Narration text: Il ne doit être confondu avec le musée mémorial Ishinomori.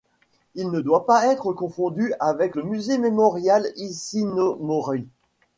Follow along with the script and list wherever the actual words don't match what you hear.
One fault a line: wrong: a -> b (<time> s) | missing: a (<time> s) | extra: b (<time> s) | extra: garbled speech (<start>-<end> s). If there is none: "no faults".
extra: pas (1.1 s)